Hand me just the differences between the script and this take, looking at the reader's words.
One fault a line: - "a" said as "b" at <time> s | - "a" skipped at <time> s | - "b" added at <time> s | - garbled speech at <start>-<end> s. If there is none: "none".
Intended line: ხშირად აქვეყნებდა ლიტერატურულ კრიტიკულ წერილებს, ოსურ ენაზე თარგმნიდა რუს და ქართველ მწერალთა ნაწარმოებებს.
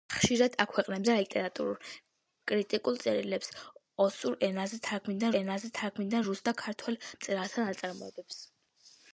- "ენაზე თარგმნიდა" added at 5.4 s